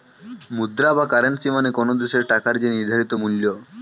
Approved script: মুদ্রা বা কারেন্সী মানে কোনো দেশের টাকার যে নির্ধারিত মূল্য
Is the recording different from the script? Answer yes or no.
no